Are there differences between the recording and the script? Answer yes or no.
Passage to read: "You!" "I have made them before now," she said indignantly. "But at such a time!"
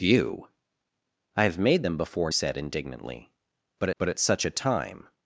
yes